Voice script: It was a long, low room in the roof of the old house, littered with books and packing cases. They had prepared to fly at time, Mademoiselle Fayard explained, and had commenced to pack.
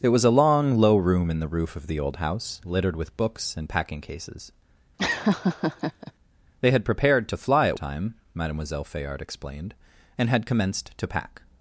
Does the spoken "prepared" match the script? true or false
true